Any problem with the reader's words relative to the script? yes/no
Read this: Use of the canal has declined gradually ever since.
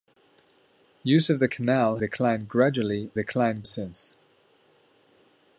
yes